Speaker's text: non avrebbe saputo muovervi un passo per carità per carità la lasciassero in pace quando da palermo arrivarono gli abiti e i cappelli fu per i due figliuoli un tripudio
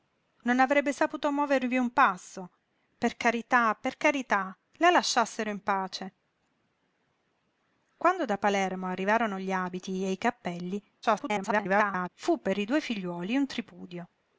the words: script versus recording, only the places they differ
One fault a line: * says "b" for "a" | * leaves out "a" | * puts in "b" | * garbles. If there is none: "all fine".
* garbles